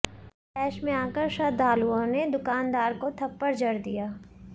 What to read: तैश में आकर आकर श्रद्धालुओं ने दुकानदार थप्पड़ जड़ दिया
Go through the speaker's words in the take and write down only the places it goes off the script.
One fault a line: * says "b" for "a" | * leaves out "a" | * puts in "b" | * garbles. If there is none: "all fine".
* leaves out "आकर"
* puts in "को"